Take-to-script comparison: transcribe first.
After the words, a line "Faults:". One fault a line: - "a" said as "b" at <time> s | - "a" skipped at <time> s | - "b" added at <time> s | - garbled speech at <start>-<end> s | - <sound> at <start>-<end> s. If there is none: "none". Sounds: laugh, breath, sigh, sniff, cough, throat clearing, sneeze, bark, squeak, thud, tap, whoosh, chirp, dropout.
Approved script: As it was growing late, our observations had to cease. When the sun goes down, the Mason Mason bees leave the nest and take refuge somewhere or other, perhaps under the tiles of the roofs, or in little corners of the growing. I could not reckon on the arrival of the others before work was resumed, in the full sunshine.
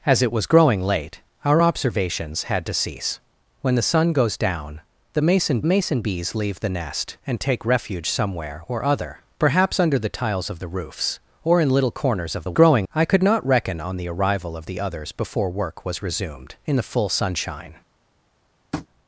As it was growing late, our observations had to cease. When the sun goes down, the Mason Mason bees leave the nest and take refuge somewhere or other, perhaps under the tiles of the roofs, or in little corners of the growing. I could not reckon on the arrival of the others before work was resumed, in the full sunshine.
Faults:
- tap at 18.7-18.9 s